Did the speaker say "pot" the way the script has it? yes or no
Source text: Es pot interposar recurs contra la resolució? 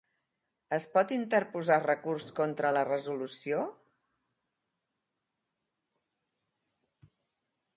yes